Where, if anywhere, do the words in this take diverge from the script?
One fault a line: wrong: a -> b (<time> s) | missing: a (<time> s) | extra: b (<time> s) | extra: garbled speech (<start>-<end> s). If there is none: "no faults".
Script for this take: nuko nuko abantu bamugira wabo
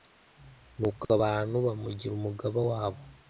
missing: nuko (1.0 s)
extra: umugaba (2.1 s)